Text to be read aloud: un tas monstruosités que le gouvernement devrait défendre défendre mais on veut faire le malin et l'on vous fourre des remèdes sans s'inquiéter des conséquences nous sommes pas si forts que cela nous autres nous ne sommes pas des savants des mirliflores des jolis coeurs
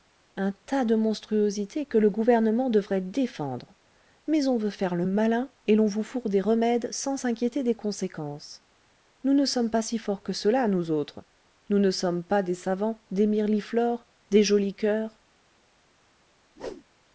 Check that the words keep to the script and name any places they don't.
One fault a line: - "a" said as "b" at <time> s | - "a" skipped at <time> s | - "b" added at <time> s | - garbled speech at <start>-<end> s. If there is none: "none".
- "de" added at 0.8 s
- "défendre" skipped at 3.8 s
- "ne" added at 9.3 s